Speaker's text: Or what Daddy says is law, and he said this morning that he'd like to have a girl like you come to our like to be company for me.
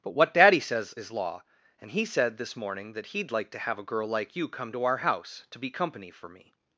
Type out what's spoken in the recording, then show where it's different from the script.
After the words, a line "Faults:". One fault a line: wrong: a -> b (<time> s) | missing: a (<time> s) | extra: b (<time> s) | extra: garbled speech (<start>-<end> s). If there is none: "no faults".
But what Daddy says is law, and he said this morning that he'd like to have a girl like you come to our house to be company for me.
Faults:
wrong: Or -> But (0.0 s)
wrong: like -> house (5.0 s)